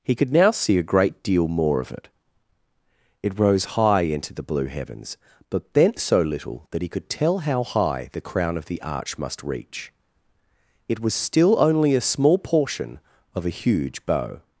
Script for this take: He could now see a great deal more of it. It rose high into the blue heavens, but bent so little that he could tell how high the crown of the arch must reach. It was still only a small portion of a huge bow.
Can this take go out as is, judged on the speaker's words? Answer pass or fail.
pass